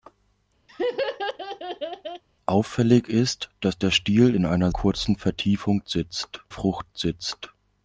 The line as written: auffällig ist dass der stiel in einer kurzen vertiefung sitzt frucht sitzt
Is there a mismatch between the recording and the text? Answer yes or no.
no